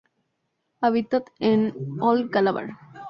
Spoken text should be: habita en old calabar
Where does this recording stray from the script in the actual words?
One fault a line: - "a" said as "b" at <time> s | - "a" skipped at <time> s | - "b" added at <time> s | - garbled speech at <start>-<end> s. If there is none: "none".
none